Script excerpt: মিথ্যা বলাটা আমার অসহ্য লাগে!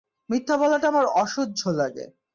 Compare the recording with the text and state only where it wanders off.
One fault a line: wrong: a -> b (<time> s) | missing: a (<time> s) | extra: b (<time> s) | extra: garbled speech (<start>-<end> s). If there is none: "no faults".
no faults